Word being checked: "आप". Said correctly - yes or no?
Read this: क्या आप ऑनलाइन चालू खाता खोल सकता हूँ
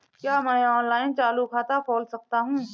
no